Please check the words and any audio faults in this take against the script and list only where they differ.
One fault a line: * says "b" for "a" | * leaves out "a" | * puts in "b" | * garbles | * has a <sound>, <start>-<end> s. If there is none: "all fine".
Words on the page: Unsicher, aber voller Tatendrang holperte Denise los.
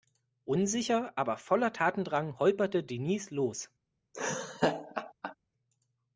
* has a laugh, 4.1-5.3 s